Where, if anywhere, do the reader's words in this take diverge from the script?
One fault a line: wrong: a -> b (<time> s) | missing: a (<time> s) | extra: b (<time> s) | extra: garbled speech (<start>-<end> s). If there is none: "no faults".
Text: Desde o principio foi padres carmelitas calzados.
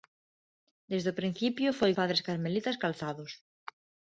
no faults